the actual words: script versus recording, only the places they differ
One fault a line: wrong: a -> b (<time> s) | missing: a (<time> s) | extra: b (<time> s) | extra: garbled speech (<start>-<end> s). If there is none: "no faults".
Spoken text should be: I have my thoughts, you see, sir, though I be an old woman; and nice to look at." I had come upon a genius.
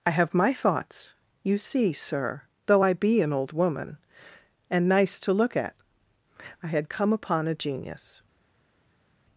no faults